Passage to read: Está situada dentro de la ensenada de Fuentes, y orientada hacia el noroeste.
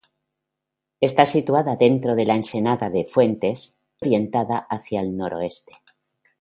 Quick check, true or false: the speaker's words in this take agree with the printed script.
false